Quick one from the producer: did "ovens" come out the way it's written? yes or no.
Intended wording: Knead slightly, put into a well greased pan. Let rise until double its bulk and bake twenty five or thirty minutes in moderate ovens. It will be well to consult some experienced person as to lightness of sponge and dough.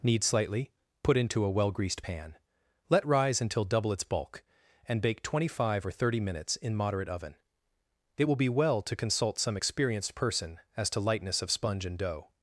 no